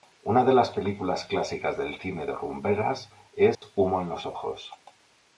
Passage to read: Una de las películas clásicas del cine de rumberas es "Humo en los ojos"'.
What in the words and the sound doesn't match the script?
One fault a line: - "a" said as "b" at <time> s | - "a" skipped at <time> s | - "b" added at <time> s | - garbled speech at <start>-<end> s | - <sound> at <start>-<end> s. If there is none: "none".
- dropout at 3.5-3.6 s